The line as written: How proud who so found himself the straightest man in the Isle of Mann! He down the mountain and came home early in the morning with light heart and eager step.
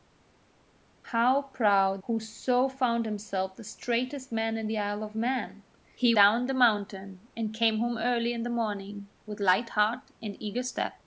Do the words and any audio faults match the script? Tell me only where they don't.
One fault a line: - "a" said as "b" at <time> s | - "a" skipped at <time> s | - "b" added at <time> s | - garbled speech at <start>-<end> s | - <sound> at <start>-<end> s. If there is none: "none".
none